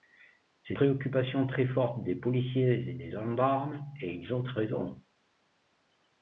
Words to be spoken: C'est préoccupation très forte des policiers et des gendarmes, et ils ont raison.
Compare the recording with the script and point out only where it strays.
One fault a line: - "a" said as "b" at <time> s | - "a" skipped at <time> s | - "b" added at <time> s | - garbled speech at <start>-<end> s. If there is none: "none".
none